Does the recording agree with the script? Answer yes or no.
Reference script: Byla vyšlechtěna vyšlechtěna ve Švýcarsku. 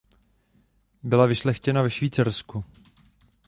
no